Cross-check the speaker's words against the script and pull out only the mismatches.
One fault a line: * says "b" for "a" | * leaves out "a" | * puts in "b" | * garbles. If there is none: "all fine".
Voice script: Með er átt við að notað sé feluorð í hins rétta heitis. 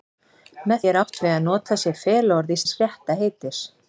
all fine